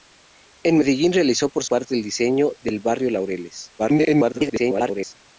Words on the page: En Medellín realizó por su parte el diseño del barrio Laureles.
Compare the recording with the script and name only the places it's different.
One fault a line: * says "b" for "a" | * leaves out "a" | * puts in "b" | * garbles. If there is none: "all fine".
* leaves out "su"
* garbles